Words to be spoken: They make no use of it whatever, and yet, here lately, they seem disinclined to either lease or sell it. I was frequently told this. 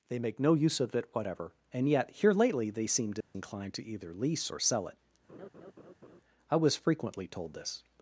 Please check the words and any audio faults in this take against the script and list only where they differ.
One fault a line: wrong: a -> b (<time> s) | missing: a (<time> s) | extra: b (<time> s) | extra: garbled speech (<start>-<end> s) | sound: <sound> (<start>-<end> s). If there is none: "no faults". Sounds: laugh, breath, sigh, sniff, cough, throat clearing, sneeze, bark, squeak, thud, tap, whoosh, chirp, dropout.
sound: dropout (3.2-3.3 s)
sound: laugh (5.3-6.2 s)